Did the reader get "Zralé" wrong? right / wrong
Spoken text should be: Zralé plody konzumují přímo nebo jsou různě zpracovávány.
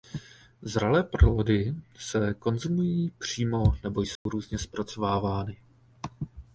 right